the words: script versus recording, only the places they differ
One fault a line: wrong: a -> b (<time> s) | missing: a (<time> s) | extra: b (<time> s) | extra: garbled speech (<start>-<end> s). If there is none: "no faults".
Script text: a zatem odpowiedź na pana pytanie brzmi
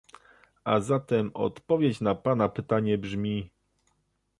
no faults